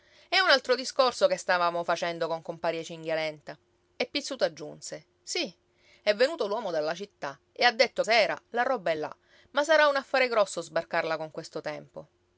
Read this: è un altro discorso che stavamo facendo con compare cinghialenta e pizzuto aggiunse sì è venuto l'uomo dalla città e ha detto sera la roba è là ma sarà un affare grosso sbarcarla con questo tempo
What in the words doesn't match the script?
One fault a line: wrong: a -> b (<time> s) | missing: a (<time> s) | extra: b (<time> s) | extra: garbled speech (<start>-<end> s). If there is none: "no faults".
no faults